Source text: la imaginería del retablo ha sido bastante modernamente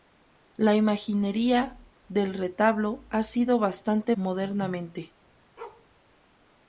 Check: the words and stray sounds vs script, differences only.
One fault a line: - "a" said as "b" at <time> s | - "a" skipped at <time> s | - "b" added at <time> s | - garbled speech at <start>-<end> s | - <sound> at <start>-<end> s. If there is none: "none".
- bark at 5.6-5.9 s